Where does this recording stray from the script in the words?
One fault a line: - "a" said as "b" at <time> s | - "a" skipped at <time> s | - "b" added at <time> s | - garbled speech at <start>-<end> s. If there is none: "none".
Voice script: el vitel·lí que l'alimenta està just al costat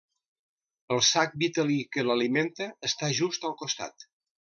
- "sac" added at 1.1 s